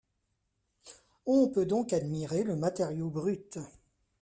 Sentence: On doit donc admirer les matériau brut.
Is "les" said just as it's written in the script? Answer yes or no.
no